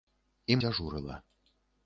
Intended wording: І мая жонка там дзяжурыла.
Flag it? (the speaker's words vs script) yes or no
yes